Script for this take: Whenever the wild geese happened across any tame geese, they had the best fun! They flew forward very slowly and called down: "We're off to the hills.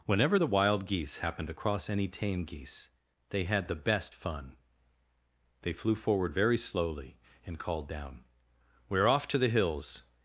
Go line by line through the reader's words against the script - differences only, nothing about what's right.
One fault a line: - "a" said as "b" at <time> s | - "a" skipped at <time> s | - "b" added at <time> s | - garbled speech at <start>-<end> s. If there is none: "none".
none